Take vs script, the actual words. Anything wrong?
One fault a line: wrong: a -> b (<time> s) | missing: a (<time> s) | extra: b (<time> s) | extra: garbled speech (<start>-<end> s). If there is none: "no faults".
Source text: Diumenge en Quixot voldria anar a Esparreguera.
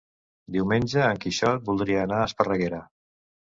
no faults